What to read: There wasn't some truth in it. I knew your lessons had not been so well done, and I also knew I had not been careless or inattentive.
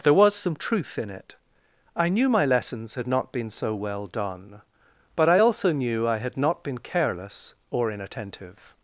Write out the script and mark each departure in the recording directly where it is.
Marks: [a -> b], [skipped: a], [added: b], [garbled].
There [wasn't -> was] some truth in it. I knew [your -> my] lessons had not been so well done, [and -> but] I also knew I had not been careless or inattentive.